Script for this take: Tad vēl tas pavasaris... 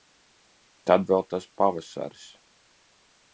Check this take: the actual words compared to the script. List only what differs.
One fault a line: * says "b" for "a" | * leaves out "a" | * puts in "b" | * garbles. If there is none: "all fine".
all fine